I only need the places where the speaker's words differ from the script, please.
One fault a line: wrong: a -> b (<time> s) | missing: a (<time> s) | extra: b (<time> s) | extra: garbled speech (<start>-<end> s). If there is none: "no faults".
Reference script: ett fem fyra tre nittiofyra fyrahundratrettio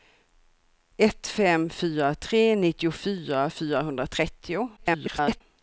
extra: garbled speech (4.8-5.4 s)